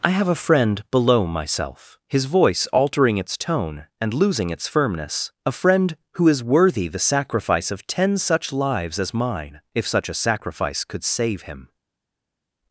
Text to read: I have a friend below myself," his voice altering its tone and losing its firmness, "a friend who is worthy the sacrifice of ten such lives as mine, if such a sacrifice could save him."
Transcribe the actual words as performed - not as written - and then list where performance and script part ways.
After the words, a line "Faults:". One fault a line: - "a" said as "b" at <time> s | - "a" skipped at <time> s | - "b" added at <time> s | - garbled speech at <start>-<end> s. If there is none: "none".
I have a friend below myself," his voice altering its tone and losing its firmness, "a friend who is worthy the sacrifice of ten such lives as mine, if such a sacrifice could save him."
Faults:
none